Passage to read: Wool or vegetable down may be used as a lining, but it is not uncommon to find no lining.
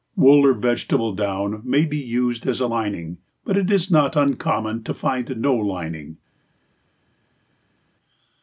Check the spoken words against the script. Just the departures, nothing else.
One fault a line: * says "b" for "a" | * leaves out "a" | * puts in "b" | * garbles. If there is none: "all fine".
all fine